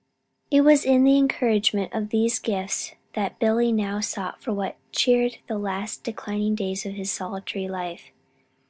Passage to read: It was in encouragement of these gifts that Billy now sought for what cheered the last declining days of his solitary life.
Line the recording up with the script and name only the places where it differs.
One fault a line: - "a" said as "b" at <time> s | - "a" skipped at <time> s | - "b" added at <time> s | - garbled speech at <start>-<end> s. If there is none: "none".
- "the" added at 1.0 s